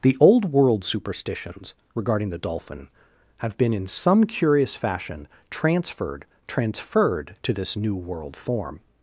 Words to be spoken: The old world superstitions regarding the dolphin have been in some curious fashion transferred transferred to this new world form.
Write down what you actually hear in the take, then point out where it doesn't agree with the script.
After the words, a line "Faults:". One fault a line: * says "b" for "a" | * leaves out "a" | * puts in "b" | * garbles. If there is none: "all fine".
The old world superstitions regarding the dolphin have been in some curious fashion transferred transferred to this new world form.
Faults:
all fine